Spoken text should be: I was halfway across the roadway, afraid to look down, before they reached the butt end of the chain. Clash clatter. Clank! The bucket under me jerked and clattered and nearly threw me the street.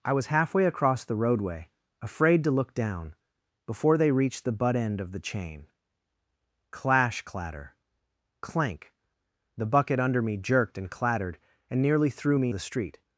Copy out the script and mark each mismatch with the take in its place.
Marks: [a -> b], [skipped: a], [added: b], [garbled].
I was halfway across the roadway, afraid to look down, before they reached the butt end of the chain. Clash clatter. Clank! The bucket under me jerked and clattered and nearly threw me the street.